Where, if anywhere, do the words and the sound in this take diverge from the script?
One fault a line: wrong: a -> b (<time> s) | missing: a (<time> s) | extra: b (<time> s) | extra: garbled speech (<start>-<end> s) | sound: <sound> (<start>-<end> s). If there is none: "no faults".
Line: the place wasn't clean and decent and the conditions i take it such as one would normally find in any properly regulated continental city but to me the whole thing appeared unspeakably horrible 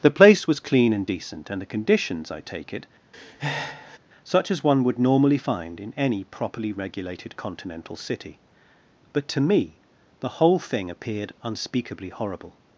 wrong: wasn't -> was (0.5 s)
sound: breath (3.1-4.0 s)